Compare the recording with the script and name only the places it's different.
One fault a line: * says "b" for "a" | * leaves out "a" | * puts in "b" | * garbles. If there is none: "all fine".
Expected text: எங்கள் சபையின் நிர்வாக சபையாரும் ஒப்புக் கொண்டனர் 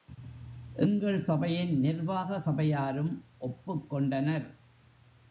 all fine